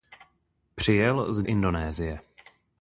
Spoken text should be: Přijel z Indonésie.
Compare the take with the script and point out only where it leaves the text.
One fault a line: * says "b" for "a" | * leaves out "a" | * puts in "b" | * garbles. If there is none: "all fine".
all fine